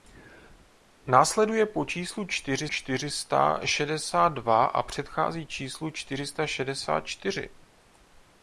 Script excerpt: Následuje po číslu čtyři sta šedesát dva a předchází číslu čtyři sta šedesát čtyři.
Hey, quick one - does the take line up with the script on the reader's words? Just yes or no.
no